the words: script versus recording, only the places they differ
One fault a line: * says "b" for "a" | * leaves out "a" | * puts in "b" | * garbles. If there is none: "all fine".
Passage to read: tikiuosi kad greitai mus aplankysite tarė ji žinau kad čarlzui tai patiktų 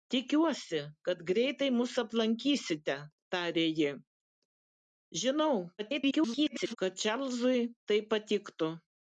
* garbles